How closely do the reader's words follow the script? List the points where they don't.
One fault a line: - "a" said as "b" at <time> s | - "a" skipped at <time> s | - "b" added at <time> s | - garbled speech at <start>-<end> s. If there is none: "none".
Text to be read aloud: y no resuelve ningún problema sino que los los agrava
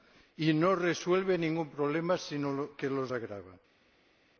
- "los" skipped at 3.1 s